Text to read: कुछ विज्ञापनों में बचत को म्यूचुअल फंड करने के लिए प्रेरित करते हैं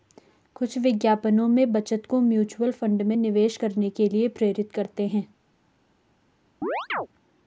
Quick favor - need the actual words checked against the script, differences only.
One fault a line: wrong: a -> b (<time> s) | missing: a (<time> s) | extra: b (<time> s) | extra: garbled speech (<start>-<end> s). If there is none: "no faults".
extra: में निवेश (3.0 s)